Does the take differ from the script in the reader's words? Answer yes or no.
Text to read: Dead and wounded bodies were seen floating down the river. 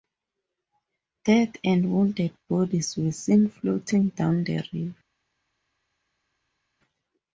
no